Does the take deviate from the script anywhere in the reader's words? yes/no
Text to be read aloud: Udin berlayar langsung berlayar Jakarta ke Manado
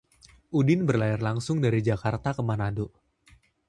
yes